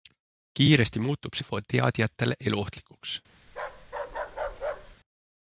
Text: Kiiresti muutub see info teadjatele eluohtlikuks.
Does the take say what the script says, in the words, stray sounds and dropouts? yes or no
no